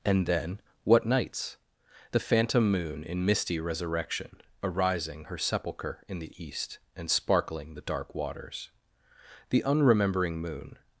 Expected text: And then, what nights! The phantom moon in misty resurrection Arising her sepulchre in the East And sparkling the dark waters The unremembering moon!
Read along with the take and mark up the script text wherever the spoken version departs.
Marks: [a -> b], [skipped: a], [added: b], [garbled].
And then, what nights! The phantom moon in misty resurrection Arising her sepulchre in the East And sparkling the dark waters The unremembering moon!